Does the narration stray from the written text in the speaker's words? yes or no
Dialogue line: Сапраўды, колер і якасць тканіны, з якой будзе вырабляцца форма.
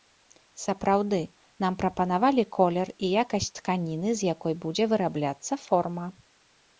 yes